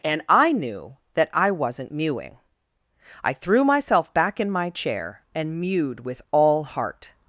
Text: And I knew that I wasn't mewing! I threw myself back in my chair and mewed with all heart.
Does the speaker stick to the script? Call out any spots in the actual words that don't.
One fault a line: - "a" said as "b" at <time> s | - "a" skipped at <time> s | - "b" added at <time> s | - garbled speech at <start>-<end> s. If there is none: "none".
none